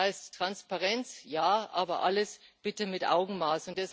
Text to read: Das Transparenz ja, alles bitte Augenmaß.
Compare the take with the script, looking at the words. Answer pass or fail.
fail